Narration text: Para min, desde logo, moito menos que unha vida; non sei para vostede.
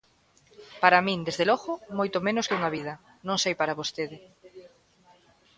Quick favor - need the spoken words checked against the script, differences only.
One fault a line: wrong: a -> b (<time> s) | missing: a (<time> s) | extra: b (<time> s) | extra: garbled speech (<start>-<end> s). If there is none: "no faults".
no faults